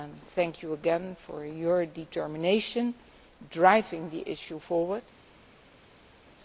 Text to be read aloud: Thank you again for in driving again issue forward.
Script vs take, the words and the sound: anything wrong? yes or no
yes